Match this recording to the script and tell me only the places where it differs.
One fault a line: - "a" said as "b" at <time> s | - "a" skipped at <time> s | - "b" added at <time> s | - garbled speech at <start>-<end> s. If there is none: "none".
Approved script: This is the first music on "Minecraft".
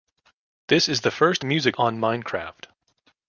none